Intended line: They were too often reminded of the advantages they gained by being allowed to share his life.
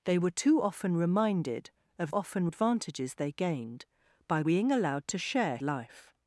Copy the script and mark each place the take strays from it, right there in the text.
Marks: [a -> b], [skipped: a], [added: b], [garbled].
They were too often reminded of [the -> often] advantages they gained by being allowed to share [skipped: his] life.